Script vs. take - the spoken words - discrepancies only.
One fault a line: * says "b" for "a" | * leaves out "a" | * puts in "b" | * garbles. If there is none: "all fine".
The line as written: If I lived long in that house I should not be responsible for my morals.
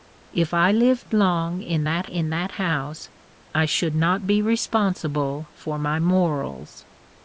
* puts in "in that"